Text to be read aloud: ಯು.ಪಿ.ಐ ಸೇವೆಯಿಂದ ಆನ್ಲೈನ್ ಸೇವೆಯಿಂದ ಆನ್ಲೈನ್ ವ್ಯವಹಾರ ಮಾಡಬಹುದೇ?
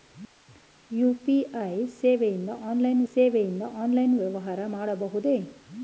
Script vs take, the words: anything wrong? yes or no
no